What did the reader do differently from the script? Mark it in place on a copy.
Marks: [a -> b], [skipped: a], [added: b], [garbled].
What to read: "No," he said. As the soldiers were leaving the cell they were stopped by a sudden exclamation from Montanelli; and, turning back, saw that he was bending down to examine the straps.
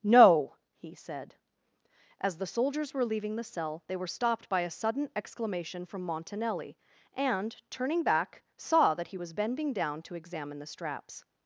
"No," he said. As the soldiers were leaving the cell they were stopped by a sudden exclamation from Montanelli; and, turning back, saw that he was bending down to examine the straps.